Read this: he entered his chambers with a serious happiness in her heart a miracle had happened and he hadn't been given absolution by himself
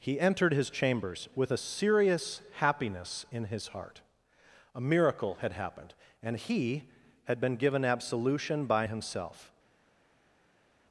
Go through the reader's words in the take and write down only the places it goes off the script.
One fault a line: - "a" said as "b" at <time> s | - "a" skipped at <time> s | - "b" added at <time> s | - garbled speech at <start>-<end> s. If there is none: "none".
- "her" said as "his" at 3.5 s
- "hadn't" said as "had" at 7.2 s